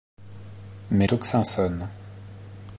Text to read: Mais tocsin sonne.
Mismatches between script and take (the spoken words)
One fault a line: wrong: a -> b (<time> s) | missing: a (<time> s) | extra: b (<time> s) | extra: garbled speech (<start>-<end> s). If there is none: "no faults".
no faults